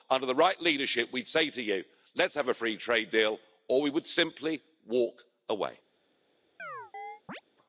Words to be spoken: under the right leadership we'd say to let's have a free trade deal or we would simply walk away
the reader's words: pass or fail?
fail